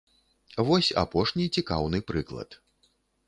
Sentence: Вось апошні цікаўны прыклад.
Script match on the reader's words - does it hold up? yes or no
yes